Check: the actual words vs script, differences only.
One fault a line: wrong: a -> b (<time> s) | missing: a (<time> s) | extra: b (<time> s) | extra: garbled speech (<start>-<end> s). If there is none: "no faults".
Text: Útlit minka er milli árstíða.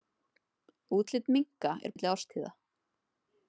no faults